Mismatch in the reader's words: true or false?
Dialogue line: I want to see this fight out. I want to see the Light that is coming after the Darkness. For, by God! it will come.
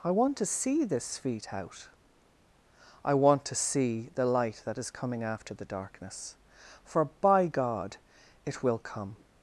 true